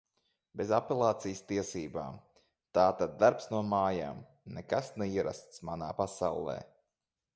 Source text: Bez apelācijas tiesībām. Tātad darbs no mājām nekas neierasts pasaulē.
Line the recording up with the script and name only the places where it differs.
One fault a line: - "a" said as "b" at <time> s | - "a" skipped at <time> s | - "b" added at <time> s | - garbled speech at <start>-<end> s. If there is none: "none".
- "manā" added at 5.7 s